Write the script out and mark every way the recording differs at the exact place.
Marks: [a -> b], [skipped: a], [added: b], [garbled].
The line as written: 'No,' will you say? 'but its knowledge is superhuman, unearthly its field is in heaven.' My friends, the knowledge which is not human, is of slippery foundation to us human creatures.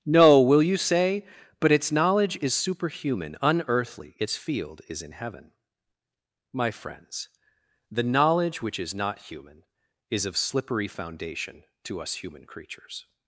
'No,' will you say? 'but its knowledge is superhuman, unearthly its field is in heaven.' My friends, the knowledge which is not human, is of slippery foundation to us human creatures.